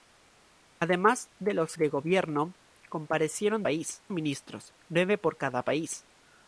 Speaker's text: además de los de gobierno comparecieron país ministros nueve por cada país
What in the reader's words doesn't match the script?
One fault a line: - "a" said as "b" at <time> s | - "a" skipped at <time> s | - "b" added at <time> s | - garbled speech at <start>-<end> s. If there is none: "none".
none